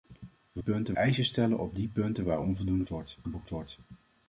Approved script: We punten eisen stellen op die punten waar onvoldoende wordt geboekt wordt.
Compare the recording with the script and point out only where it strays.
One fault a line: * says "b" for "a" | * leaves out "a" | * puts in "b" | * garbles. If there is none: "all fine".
all fine